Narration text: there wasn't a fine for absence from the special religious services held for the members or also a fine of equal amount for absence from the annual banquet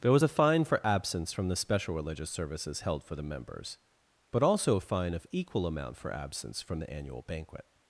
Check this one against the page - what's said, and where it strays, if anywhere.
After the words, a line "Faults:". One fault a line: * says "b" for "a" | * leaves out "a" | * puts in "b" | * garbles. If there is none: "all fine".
there was a fine for absence from the special religious services held for the members but also a fine of equal amount for absence from the annual banquet
Faults:
* says "was" for "wasn't"
* says "but" for "or"